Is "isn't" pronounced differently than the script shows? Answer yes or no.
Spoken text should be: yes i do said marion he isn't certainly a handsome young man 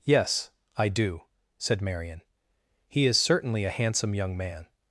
yes